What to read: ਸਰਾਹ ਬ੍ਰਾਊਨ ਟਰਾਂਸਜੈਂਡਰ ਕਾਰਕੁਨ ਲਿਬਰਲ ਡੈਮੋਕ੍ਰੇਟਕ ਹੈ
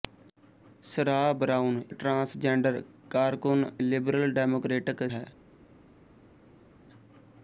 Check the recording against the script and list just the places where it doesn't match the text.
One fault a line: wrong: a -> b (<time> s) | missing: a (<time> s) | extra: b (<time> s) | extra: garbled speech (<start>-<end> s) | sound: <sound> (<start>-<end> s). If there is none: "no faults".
no faults